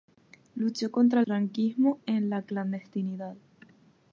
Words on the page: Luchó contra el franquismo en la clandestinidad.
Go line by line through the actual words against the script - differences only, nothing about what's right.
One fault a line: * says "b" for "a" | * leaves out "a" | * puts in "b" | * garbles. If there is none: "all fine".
* leaves out "el"